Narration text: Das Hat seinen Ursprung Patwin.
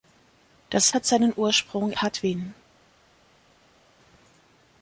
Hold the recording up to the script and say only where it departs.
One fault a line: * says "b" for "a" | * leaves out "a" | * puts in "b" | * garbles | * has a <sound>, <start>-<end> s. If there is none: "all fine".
all fine